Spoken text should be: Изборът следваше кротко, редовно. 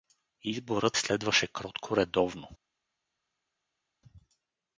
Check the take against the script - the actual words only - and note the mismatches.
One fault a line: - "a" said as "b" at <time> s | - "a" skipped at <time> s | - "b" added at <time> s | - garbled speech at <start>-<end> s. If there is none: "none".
none